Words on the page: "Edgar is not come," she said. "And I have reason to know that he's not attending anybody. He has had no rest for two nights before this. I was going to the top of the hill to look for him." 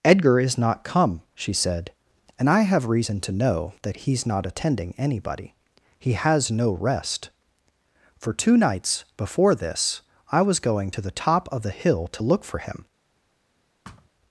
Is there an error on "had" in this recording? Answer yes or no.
yes